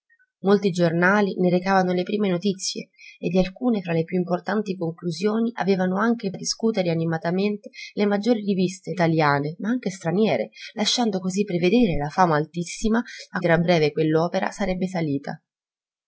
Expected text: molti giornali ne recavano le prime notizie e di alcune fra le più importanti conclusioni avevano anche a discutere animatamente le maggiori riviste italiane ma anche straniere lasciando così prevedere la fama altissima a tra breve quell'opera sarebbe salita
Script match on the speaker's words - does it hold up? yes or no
yes